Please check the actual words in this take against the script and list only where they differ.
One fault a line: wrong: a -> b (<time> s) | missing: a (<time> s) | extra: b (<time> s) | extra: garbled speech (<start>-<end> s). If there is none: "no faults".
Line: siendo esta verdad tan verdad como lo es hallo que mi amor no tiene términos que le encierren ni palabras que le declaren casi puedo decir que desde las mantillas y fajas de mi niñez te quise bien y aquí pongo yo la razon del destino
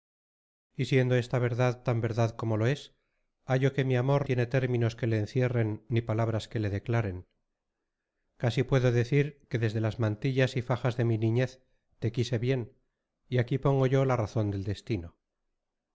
missing: no (4.3 s)